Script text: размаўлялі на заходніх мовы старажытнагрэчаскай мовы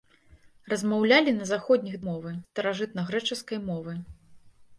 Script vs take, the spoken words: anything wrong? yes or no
no